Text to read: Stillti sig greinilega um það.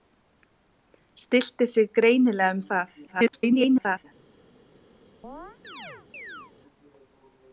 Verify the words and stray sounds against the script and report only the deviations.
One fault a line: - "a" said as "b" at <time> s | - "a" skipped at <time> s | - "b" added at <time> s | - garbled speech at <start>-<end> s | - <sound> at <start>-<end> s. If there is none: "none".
- garbled speech at 3.1-4.0 s
- chirp at 5.2-6.5 s